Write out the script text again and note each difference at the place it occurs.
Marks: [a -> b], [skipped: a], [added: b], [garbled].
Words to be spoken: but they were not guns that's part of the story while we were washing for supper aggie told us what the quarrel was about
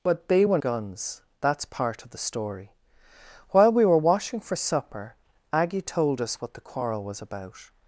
but they were [skipped: not] guns that's part of the story while we were washing for supper aggie told us what the quarrel was about